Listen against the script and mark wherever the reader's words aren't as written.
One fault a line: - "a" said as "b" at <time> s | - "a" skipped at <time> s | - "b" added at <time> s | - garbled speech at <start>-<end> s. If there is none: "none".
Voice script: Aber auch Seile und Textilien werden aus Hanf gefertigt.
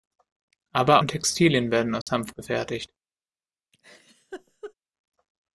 - "auch Seile" skipped at 1.0 s